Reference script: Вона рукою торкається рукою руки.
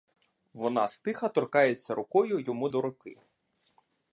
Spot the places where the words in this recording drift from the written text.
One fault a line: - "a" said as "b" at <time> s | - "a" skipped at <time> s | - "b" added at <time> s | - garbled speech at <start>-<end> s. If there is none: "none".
- "рукою" said as "стиха" at 0.9 s
- "йому до" added at 2.4 s